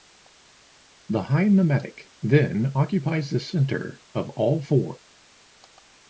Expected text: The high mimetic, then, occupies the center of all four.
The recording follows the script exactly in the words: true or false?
true